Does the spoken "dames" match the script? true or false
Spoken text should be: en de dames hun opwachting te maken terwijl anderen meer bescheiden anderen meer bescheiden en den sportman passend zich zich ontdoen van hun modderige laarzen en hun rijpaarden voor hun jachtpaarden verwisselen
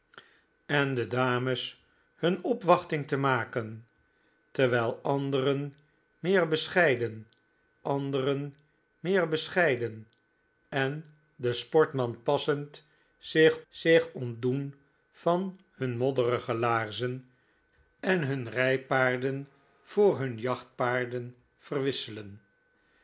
true